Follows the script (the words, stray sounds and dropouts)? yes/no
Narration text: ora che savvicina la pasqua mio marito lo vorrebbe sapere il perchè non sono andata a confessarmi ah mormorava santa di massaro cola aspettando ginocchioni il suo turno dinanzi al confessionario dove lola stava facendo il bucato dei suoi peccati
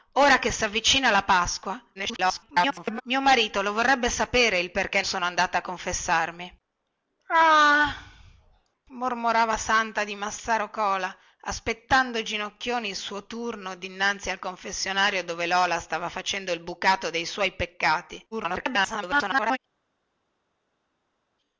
no